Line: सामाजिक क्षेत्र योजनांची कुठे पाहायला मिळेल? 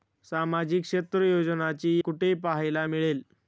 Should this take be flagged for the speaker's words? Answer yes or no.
no